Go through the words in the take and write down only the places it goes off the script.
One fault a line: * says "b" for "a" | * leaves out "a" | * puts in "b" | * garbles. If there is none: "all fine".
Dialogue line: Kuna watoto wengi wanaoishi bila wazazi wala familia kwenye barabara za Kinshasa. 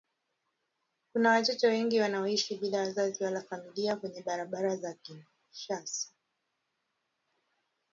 all fine